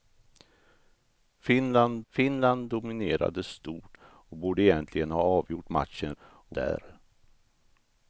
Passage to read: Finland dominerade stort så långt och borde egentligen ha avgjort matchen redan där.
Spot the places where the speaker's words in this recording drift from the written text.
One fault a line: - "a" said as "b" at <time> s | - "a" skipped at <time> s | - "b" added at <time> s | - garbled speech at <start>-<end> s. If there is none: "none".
- "finland" added at 2.1 s
- "så långt" skipped at 4.0 s
- "redan" said as "och" at 6.2 s